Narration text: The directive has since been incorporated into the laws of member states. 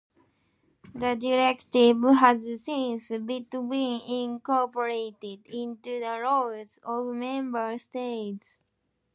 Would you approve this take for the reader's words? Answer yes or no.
yes